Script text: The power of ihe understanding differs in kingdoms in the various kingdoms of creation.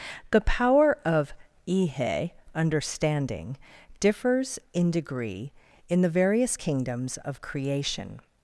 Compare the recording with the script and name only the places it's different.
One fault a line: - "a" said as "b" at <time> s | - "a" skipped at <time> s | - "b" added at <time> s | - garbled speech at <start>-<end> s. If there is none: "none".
- "kingdoms" said as "degree" at 4.9 s